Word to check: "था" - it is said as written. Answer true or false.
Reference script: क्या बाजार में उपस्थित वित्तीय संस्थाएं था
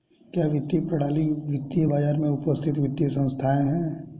false